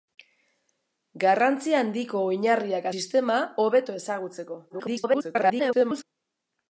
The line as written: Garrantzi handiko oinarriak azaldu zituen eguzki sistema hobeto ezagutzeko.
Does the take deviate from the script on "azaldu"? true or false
true